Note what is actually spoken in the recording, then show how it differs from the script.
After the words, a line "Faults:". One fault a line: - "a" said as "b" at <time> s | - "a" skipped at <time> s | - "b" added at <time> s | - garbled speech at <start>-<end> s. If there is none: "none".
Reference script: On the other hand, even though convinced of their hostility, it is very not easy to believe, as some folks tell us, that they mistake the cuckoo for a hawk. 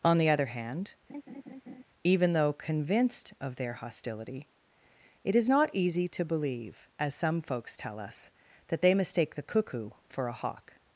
On the other hand, even though convinced of their hostility, it is not easy to believe, as some folks tell us, that they mistake the cuckoo for a hawk.
Faults:
- "very" skipped at 5.5 s